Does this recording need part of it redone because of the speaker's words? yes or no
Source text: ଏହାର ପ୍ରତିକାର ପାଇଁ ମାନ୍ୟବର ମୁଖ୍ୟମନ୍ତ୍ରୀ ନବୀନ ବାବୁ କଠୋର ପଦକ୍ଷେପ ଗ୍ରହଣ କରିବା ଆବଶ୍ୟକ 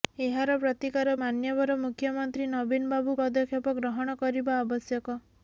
yes